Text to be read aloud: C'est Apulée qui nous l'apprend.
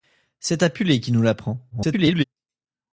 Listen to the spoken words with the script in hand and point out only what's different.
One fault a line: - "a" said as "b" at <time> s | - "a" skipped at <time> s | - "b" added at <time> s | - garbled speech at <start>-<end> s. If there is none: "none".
- garbled speech at 1.7-2.2 s